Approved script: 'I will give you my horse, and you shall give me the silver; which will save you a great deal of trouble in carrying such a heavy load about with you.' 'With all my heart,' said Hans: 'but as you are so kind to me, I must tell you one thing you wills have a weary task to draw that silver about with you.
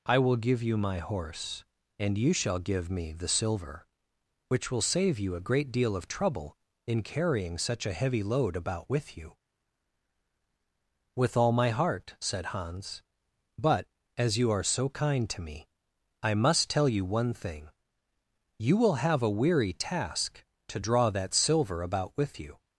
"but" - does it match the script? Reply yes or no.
yes